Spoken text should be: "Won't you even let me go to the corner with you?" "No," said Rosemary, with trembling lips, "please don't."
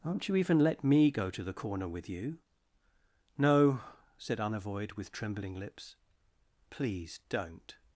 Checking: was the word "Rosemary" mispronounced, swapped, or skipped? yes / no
yes